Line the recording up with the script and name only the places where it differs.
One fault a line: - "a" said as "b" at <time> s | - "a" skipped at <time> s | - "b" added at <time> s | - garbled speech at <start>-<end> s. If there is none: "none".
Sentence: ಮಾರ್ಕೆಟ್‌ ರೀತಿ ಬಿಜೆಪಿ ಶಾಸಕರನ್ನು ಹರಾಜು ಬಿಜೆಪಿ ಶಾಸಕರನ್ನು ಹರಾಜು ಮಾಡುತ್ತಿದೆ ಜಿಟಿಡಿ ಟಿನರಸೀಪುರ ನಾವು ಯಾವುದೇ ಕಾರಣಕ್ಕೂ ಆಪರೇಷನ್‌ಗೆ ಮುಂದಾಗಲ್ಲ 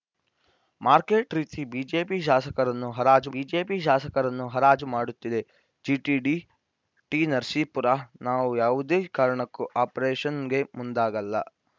none